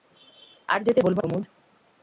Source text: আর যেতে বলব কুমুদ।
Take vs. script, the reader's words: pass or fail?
pass